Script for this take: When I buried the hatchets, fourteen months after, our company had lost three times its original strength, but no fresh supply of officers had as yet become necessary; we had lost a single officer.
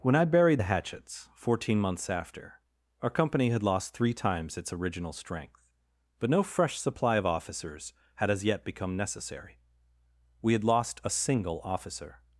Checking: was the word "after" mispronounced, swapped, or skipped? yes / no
no